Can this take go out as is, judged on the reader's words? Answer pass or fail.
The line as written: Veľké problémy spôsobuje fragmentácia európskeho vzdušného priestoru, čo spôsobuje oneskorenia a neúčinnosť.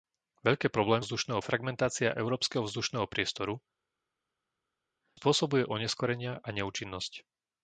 fail